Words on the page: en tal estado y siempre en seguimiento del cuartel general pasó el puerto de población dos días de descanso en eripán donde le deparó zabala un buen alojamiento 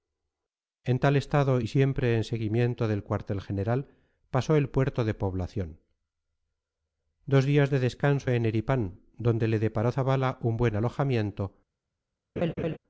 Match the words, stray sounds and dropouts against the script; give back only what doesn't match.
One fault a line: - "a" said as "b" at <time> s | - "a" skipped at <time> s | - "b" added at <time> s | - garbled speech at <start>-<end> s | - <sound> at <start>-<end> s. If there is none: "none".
- laugh at 12.4-12.8 s